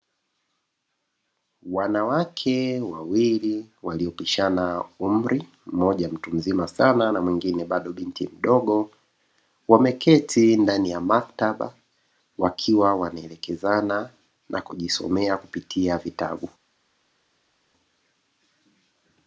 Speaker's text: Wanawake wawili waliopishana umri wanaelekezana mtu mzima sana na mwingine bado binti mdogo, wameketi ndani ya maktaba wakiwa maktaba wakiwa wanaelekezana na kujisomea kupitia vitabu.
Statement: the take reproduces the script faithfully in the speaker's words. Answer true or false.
false